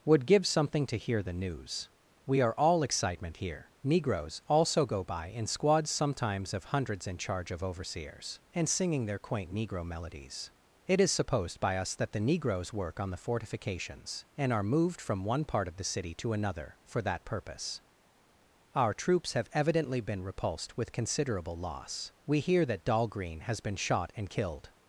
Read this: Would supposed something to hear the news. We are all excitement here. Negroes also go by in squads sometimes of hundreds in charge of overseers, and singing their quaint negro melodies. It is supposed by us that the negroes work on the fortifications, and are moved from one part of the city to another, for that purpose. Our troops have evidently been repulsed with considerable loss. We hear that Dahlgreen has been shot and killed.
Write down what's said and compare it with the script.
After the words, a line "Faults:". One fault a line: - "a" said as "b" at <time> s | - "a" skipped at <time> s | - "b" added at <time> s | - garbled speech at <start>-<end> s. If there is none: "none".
Would give something to hear the news. We are all excitement here. Negroes also go by in squads sometimes of hundreds in charge of overseers, and singing their quaint negro melodies. It is supposed by us that the negroes work on the fortifications, and are moved from one part of the city to another, for that purpose. Our troops have evidently been repulsed with considerable loss. We hear that Dahlgreen has been shot and killed.
Faults:
- "supposed" said as "give" at 0.2 s